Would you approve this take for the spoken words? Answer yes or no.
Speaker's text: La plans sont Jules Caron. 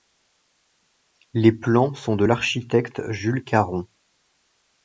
no